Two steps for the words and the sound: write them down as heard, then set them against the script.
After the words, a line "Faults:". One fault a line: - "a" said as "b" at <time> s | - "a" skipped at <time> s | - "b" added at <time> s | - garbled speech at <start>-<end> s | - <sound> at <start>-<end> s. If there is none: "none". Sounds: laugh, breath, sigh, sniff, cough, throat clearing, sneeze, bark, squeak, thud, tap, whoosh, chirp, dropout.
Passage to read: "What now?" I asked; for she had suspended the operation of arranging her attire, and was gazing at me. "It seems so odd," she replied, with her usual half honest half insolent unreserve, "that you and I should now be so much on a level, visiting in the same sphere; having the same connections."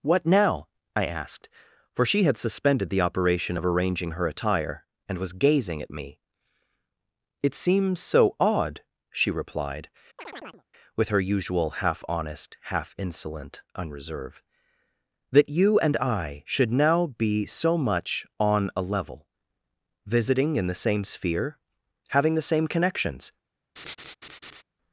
"What now?" I asked; for she had suspended the operation of arranging her attire, and was gazing at me. "It seems so odd," she replied, with her usual half honest half insolent unreserve, "that you and I should now be so much on a level, visiting in the same sphere; having the same connections."
Faults:
- chirp at 10.2-10.6 s
- laugh at 23.8-24.6 s